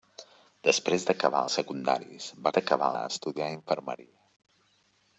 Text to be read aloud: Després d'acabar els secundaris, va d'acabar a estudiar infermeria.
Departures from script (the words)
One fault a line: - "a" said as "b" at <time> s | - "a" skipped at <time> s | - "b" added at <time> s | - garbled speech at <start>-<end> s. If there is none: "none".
none